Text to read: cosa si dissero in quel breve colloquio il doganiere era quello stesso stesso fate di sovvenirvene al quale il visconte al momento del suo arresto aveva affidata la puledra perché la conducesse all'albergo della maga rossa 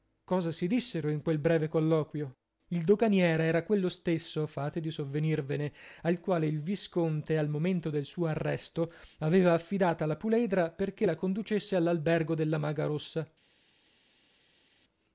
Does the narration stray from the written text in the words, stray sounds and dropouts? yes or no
yes